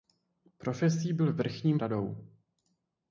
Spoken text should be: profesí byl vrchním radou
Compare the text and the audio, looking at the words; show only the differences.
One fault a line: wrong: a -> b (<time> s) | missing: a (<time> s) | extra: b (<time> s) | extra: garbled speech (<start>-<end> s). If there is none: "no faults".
no faults